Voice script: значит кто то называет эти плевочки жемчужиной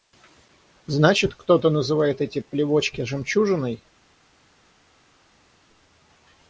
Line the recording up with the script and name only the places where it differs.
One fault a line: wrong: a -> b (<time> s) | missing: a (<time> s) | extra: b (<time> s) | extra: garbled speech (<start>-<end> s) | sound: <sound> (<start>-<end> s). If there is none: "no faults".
no faults